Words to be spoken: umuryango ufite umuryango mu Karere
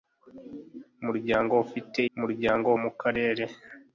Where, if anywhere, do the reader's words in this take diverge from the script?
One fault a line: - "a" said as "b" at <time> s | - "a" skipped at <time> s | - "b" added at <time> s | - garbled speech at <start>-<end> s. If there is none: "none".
none